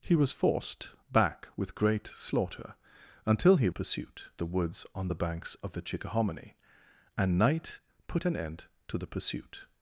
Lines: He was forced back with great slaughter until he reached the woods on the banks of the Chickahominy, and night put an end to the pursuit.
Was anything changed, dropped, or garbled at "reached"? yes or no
yes